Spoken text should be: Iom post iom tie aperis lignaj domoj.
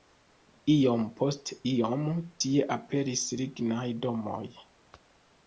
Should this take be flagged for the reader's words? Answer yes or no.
no